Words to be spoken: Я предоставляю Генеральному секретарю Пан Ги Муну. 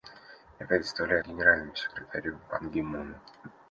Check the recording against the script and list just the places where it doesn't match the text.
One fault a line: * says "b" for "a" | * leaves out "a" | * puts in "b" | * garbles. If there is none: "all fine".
all fine